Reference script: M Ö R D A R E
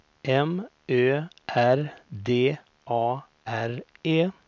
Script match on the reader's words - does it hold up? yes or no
yes